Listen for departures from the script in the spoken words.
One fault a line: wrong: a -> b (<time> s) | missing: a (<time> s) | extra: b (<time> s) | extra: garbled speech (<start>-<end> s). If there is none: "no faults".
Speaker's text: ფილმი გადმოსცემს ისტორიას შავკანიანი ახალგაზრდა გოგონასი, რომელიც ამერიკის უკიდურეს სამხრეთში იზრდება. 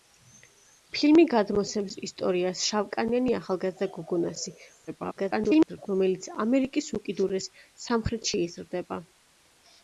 extra: garbled speech (4.9-5.9 s)